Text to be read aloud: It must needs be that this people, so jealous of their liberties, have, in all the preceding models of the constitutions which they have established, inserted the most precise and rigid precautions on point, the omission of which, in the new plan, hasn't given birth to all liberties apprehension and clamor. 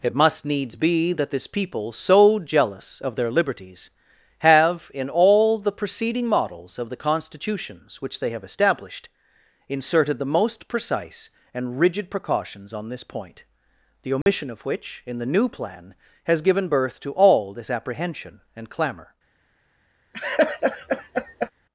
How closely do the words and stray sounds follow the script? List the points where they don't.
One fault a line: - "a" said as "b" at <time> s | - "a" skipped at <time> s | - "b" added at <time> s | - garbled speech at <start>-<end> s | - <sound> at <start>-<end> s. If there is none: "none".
- "this" added at 12.9 s
- dropout at 14.2-14.3 s
- "hasn't" said as "has" at 16.2 s
- "liberties" said as "this" at 17.5 s
- laugh at 20.1-21.5 s